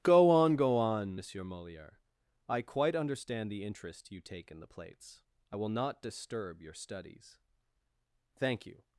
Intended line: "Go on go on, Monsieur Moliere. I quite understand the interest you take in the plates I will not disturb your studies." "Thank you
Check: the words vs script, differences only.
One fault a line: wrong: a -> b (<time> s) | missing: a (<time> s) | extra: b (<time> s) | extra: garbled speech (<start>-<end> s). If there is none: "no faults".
no faults